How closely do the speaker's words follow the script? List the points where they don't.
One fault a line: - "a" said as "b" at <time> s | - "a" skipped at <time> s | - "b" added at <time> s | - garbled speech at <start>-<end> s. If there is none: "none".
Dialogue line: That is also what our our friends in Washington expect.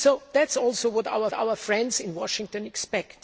none